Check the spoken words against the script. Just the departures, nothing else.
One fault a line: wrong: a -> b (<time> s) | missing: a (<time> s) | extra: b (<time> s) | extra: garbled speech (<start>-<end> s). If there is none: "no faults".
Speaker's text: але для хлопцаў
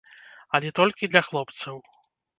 extra: толькі (0.8 s)